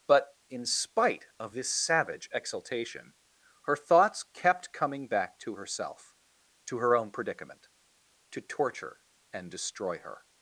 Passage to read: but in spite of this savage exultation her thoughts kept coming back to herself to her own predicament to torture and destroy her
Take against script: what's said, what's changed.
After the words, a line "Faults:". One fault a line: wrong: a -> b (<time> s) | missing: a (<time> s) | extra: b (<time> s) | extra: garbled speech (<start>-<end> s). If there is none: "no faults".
but in spite of this savage exultation her thoughts kept coming back to herself to her own predicament to torture and destroy her
Faults:
no faults